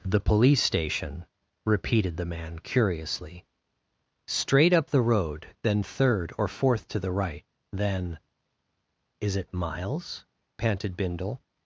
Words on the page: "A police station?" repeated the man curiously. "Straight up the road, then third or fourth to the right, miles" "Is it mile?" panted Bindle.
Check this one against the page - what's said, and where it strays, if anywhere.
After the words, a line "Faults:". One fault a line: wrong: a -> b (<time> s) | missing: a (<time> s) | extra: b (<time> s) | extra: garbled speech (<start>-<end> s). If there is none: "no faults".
"The police station?" repeated the man curiously. "Straight up the road, then third or fourth to the right, then" "Is it miles?" panted Bindle.
Faults:
wrong: A -> The (0.0 s)
wrong: miles -> then (7.7 s)
wrong: mile -> miles (9.5 s)